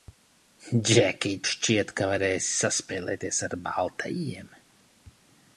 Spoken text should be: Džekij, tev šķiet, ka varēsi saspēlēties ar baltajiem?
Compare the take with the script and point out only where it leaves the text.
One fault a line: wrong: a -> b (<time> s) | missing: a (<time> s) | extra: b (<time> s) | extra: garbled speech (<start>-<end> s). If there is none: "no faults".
missing: tev (1.4 s)